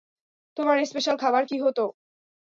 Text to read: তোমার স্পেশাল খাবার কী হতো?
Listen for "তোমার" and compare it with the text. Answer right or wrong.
right